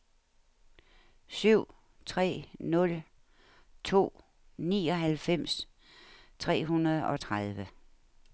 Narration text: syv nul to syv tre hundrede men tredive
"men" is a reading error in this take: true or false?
true